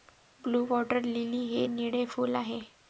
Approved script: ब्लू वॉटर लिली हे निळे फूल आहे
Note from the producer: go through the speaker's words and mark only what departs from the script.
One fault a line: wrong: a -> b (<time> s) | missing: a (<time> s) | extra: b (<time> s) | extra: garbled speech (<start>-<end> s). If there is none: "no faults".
no faults